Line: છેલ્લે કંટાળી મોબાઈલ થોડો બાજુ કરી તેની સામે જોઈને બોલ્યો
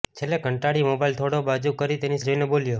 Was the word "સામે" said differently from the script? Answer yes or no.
yes